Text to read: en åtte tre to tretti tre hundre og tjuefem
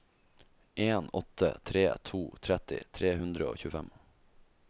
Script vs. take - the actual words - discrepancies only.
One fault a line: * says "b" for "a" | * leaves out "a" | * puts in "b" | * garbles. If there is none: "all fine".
all fine